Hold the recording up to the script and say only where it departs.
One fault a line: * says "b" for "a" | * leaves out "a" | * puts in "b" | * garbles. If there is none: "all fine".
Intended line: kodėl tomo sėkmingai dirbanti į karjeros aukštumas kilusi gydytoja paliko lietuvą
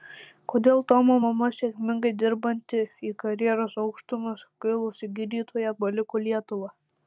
* puts in "mama"